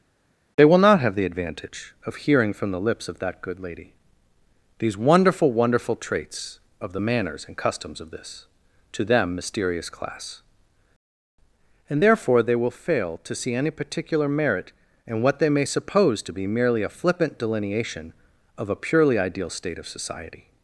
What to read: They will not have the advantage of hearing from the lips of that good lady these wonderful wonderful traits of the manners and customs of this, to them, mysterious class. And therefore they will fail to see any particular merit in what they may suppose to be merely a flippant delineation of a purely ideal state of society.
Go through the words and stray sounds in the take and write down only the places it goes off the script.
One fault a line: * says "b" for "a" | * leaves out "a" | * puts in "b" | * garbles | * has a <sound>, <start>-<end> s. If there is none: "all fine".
all fine